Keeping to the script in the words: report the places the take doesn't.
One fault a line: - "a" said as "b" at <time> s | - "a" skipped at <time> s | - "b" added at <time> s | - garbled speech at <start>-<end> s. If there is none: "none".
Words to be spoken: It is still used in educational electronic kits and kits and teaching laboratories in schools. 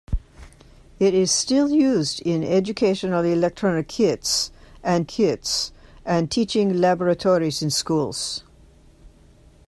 none